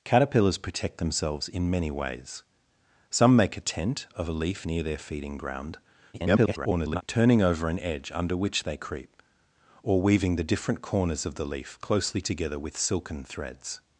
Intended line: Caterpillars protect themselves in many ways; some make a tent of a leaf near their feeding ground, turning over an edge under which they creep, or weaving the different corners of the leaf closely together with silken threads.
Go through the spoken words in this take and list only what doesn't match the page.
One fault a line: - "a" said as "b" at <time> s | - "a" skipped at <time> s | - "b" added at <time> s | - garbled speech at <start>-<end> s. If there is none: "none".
- garbled speech at 6.1-7.0 s